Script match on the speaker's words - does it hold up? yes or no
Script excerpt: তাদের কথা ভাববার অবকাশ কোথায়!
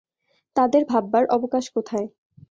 no